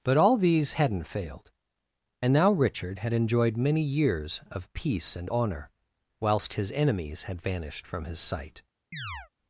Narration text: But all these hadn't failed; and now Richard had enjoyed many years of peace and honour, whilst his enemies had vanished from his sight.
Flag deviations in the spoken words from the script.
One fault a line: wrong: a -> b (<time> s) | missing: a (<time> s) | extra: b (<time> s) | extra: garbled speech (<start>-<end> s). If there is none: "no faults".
no faults